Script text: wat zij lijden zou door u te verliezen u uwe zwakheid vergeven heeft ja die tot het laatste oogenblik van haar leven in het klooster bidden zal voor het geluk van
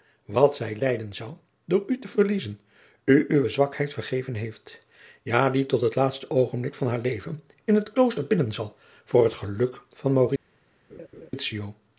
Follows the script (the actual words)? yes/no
yes